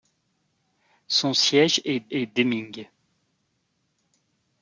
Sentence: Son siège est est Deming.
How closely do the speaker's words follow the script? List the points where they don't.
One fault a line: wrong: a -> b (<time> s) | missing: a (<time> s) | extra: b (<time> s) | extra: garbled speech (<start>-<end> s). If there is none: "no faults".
no faults